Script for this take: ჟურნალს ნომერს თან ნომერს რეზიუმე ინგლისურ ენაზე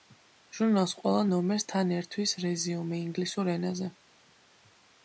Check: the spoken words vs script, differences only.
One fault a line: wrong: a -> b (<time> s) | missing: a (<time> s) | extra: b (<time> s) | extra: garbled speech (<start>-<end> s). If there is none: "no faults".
extra: ყველა (1.0 s)
wrong: ნომერს -> ერთვის (2.0 s)